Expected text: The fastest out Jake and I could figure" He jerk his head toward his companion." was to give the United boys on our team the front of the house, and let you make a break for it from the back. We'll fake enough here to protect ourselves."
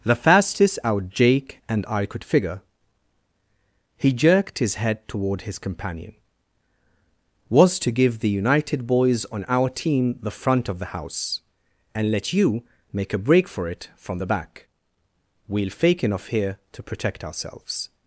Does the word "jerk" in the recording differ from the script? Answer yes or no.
yes